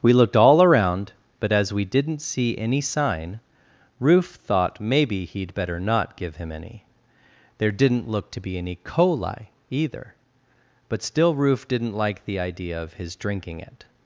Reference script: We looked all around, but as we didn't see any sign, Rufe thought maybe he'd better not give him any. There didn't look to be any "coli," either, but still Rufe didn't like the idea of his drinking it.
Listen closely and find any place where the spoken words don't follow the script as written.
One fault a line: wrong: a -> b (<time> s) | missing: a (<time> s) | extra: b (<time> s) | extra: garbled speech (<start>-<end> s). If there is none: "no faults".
no faults